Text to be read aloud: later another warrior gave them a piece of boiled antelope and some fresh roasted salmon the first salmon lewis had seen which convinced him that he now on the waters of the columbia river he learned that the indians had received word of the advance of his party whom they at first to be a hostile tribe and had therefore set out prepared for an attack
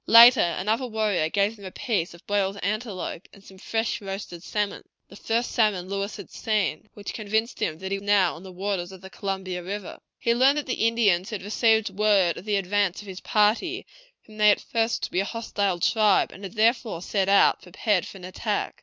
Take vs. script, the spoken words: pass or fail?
pass